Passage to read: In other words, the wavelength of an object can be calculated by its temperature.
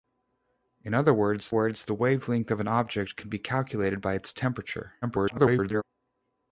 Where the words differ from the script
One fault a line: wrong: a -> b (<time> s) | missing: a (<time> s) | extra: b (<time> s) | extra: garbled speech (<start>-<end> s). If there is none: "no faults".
extra: words (1.5 s)
extra: garbled speech (5.0-5.8 s)